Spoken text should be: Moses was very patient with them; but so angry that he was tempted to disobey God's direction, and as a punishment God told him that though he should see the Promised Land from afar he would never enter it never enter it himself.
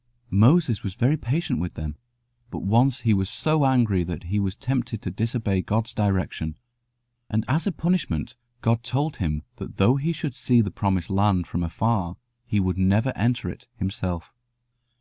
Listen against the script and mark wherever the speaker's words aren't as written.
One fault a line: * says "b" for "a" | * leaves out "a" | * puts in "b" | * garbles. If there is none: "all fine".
* puts in "once he was"
* leaves out "never enter it"